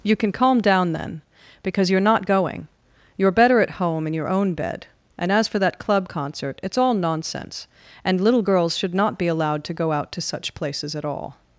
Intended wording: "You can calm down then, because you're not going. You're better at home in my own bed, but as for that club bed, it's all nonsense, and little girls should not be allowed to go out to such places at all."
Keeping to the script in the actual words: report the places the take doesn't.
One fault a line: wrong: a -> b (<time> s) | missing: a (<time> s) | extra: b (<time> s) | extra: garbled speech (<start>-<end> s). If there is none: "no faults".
wrong: my -> your (4.1 s)
wrong: but -> and (5.2 s)
wrong: bed -> concert (6.1 s)